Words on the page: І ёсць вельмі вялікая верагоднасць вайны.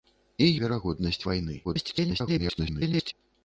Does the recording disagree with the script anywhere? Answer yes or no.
yes